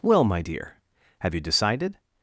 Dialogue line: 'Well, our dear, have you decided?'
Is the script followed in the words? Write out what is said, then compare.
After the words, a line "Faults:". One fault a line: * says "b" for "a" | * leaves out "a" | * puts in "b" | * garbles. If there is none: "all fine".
'Well, my dear, have you decided?'
Faults:
* says "my" for "our"